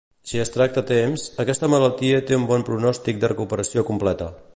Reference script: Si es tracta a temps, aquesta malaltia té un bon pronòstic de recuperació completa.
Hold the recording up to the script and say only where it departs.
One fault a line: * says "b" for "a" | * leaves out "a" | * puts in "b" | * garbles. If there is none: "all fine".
all fine